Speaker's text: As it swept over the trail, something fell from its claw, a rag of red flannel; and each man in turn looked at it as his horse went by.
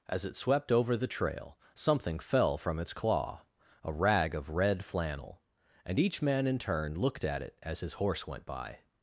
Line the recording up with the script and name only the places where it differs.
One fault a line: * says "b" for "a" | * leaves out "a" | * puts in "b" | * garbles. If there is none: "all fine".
all fine